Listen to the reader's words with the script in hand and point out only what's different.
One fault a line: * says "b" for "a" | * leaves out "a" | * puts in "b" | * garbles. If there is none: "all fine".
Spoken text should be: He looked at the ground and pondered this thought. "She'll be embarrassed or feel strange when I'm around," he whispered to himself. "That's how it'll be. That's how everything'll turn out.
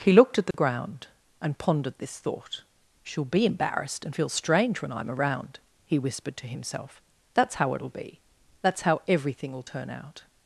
* says "and" for "or"